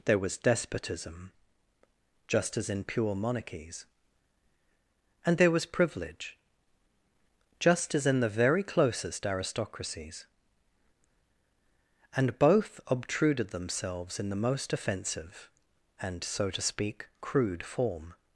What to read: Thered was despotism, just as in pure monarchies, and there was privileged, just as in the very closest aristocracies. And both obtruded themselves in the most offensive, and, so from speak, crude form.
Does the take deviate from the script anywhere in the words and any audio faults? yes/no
yes